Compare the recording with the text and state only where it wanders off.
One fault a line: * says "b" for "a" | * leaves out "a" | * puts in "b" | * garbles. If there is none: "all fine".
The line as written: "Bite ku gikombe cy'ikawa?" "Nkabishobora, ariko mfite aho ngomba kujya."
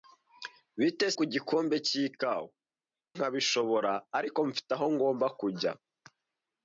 all fine